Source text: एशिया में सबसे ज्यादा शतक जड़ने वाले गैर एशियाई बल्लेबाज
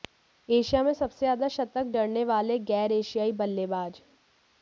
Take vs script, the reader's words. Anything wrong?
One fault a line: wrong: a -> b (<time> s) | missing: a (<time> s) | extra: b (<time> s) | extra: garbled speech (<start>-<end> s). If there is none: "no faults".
no faults